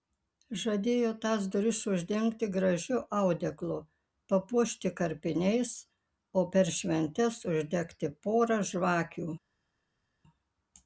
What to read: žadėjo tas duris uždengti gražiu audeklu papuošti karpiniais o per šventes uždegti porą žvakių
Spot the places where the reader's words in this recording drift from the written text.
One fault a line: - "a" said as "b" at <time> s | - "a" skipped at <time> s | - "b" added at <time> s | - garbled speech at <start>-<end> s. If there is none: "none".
none